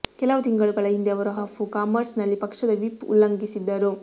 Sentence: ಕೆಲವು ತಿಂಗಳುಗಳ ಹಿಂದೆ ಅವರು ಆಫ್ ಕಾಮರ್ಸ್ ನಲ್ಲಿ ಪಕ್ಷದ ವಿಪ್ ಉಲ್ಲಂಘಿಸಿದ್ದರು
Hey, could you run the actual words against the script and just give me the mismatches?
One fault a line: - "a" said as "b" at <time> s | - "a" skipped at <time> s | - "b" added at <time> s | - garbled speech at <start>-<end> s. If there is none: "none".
none